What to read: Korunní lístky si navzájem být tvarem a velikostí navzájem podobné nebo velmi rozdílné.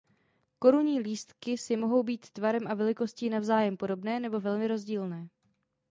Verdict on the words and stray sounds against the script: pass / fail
fail